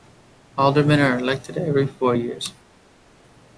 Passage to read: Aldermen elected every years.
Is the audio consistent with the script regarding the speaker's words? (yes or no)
no